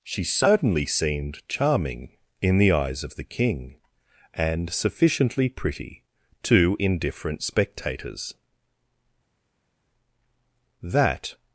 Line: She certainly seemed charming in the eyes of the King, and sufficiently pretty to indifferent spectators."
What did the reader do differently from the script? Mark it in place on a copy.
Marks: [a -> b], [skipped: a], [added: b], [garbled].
She certainly seemed charming in the eyes of the King, and sufficiently pretty to indifferent spectators." [added: That]